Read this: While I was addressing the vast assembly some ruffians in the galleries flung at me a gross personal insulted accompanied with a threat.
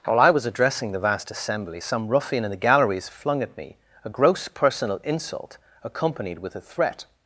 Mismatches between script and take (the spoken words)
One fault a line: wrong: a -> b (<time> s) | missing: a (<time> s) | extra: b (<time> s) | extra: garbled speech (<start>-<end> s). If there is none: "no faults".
wrong: ruffians -> ruffian (2.1 s)
wrong: insulted -> insult (5.0 s)